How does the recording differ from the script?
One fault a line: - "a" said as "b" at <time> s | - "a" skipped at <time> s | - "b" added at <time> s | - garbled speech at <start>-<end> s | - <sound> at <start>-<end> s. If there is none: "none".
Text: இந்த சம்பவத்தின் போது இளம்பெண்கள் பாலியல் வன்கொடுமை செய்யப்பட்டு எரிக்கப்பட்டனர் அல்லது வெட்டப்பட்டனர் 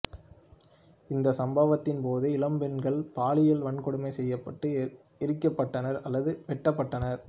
none